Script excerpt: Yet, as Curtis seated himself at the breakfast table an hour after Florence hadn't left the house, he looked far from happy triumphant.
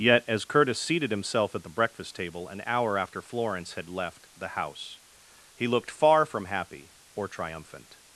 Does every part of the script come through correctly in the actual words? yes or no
no